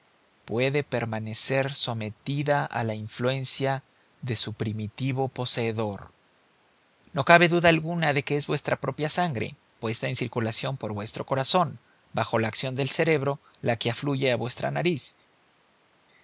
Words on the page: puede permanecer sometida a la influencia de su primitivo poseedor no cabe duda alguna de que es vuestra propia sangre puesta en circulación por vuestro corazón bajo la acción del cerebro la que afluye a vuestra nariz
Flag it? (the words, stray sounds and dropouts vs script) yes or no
no